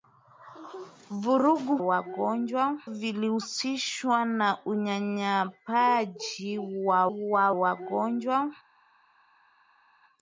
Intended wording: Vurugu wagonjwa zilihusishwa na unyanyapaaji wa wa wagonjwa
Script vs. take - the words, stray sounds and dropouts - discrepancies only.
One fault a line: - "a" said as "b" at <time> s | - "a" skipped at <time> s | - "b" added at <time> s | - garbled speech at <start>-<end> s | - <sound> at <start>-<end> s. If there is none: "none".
none